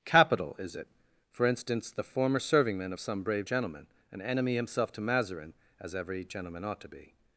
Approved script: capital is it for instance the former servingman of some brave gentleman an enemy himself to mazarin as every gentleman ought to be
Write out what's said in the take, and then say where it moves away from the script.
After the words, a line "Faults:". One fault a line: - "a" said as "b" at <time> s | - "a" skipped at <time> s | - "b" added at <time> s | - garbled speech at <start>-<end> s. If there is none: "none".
capital is it for instance the former servingman of some brave gentleman an enemy himself to mazarin as every gentleman ought to be
Faults:
none